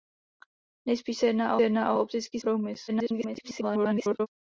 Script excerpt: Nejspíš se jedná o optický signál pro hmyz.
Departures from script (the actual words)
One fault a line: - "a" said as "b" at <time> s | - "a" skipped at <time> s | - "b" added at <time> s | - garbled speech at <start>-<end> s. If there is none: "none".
- "jedná" added at 1.6 s
- "signál" skipped at 2.4 s
- garbled speech at 2.9-4.3 s